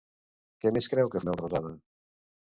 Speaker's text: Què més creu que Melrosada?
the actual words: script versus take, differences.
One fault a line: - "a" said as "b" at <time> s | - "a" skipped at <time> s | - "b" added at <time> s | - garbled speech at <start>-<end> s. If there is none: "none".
none